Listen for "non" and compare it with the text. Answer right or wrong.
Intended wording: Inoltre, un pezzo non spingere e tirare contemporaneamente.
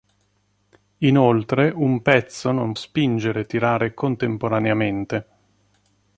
right